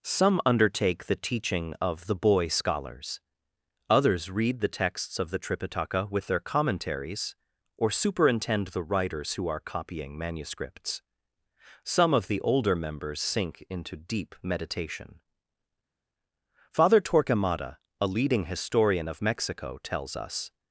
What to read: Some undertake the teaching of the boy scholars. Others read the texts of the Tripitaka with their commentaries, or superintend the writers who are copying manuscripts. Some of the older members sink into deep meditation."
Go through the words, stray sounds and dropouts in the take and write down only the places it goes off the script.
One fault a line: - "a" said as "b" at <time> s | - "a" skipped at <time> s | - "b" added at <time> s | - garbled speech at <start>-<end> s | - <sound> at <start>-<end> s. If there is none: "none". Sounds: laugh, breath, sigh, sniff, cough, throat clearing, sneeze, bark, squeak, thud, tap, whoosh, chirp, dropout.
- "Father Torquemada a leading historian of Mexico tells us" added at 16.7 s